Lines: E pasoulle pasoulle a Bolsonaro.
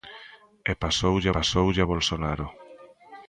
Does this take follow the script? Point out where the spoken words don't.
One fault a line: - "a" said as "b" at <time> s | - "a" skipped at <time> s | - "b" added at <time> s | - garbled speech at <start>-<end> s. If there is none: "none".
none